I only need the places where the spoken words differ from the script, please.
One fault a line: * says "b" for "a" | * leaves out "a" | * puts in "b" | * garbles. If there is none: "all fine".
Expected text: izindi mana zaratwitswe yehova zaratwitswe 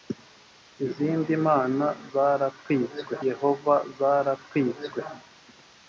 all fine